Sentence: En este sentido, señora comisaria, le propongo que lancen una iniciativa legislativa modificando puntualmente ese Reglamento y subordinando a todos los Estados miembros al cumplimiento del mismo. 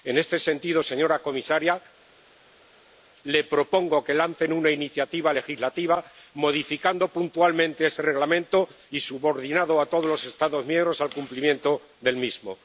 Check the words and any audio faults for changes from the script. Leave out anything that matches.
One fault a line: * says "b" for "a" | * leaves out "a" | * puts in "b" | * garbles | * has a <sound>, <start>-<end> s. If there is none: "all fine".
all fine